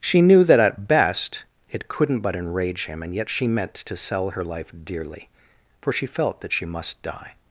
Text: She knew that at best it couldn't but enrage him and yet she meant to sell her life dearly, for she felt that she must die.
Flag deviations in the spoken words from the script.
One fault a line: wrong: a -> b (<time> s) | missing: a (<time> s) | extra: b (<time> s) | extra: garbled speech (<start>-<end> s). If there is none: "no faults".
no faults